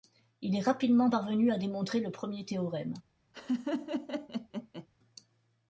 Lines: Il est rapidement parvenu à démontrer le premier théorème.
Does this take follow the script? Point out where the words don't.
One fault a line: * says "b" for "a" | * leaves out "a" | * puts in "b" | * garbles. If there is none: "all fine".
all fine